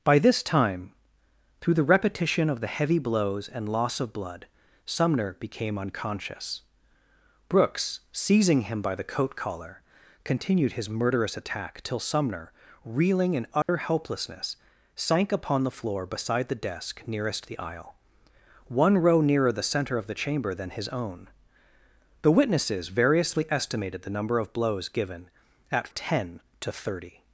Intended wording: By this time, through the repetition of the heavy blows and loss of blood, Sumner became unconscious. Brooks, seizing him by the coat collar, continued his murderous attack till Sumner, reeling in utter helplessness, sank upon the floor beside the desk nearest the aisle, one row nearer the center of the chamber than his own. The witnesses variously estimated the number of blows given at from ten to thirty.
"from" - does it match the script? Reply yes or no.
no